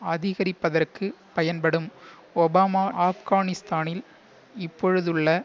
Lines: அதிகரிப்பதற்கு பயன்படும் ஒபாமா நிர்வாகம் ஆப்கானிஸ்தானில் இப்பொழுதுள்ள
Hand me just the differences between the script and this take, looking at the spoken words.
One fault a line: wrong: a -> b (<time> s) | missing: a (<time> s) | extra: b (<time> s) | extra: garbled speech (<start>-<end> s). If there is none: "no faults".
missing: நிர்வாகம் (2.8 s)